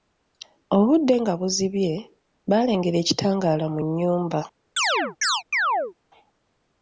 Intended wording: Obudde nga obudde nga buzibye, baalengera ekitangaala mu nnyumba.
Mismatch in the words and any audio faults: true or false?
true